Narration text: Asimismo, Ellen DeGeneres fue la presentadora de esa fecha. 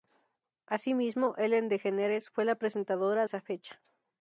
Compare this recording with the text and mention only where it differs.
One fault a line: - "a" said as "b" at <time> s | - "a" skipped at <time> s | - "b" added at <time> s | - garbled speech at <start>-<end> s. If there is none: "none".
- "de" skipped at 3.3 s